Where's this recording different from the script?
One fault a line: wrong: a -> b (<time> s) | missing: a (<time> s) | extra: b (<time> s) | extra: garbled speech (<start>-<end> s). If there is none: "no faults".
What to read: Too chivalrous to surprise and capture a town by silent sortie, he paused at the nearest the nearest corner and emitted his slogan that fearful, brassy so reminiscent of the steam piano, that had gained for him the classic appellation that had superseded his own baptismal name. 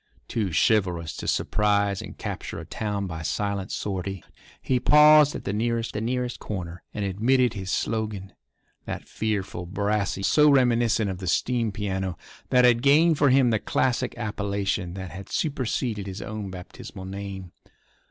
no faults